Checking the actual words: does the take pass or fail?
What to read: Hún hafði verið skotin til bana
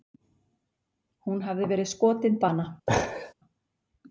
fail